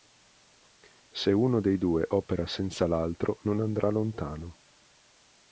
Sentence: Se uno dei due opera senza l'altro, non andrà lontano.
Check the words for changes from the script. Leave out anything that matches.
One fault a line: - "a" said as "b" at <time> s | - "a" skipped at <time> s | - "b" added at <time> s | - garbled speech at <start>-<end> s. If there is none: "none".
none